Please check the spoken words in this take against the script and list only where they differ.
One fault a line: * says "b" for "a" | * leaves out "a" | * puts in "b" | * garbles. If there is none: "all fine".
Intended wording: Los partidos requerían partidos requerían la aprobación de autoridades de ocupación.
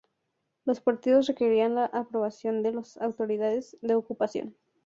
* leaves out "partidos requerían"
* puts in "las"